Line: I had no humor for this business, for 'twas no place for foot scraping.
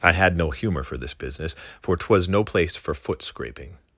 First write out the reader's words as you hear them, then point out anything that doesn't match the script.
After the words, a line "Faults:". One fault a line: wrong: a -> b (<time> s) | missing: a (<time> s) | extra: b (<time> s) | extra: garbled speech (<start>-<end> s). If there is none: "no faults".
I had no humor for this business, for 'twas no place for foot scraping.
Faults:
no faults